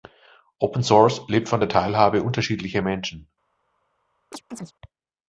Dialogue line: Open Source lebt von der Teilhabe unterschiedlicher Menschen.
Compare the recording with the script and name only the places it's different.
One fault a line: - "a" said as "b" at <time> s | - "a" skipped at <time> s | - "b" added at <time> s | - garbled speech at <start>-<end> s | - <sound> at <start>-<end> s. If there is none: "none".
- chirp at 4.3-4.7 s